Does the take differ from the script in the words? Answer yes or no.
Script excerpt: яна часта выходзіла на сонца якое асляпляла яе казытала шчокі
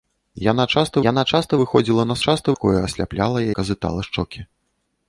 yes